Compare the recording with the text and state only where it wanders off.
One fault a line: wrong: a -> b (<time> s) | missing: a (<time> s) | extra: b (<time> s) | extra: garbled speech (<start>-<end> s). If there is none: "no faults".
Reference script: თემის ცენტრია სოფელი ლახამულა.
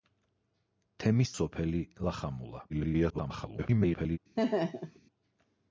missing: ცენტრია (1.3 s)
extra: garbled speech (2.7-4.2 s)